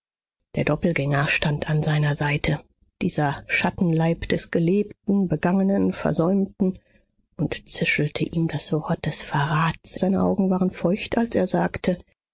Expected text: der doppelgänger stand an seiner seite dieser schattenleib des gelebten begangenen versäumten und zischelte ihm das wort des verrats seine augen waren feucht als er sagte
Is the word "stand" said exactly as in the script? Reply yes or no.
yes